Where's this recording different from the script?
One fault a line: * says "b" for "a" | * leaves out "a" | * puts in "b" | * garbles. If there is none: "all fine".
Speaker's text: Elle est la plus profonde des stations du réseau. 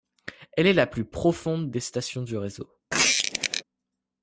all fine